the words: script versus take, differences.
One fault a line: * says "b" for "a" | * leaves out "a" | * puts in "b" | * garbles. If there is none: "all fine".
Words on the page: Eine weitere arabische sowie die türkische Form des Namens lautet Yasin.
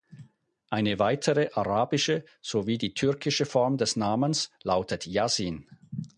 all fine